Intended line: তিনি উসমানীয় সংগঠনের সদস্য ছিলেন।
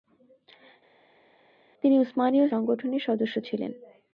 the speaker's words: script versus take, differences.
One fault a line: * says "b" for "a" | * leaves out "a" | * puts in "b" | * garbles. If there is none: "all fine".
all fine